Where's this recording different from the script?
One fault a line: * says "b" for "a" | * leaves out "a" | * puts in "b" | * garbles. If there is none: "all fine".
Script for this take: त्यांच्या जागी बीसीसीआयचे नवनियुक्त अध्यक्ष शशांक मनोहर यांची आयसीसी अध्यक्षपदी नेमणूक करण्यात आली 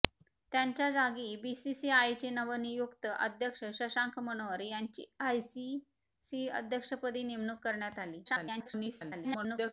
* garbles